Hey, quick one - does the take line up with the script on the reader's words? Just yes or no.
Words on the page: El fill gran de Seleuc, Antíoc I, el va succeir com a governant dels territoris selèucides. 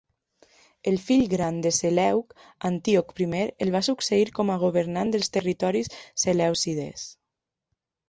yes